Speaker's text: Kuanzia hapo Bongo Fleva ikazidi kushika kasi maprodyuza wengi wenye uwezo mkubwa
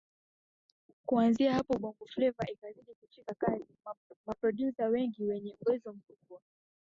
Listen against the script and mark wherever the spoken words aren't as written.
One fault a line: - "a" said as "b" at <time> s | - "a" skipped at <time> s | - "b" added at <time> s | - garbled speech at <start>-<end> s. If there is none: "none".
none